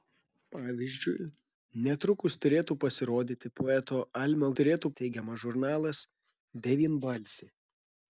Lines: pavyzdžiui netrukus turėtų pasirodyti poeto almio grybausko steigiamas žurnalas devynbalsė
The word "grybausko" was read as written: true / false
false